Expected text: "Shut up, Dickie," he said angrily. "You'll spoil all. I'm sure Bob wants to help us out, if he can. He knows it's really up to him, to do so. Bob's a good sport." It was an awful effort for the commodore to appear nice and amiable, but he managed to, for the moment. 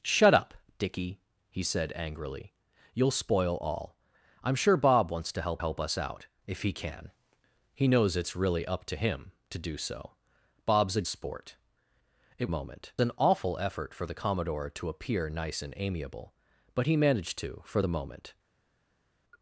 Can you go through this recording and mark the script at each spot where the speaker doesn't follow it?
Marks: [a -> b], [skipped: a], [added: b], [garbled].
"Shut up, Dickie," he said angrily. "You'll spoil all. I'm sure Bob wants to help [added: help] us out, if he can. He knows it's really up to him, to do so. Bob's a [skipped: good] sport." It [was -> moment] an awful effort for the commodore to appear nice and amiable, but he managed to, for the moment.